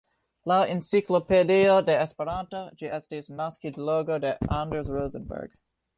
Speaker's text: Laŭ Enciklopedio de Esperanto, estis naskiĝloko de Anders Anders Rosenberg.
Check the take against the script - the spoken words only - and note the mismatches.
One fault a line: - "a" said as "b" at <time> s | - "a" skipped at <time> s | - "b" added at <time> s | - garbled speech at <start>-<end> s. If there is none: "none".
- "ĝi" added at 2.8 s
- "Anders" skipped at 4.9 s